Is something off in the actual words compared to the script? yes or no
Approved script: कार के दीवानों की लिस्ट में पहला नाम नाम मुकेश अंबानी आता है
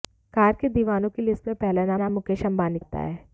no